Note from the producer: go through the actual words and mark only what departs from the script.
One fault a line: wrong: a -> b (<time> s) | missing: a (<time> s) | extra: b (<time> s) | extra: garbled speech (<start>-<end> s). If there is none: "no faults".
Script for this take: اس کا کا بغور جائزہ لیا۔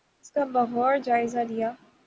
missing: کا (0.4 s)